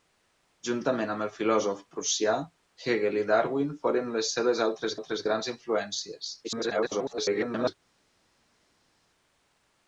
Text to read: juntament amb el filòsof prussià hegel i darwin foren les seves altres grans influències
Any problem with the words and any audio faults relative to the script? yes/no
yes